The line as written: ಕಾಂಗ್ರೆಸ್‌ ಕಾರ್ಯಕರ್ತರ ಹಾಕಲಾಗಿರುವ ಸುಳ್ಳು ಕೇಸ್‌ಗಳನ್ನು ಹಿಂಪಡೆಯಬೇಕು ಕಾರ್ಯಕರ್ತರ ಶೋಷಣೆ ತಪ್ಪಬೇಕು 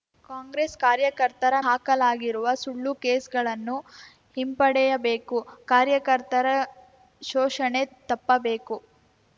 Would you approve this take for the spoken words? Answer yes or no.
yes